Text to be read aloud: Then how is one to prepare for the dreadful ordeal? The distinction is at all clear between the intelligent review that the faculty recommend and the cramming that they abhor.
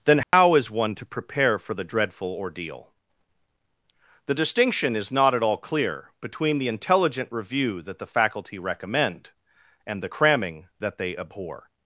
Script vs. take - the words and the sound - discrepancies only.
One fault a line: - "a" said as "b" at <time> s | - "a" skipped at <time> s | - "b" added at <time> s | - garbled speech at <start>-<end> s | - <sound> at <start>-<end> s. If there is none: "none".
- dropout at 0.2-0.3 s
- "not" added at 5.1 s